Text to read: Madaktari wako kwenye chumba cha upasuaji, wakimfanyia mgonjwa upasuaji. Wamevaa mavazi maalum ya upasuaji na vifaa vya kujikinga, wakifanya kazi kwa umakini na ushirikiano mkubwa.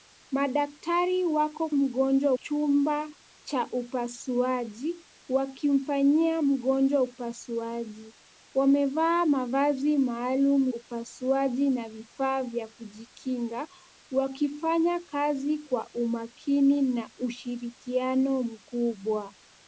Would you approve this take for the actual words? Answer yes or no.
no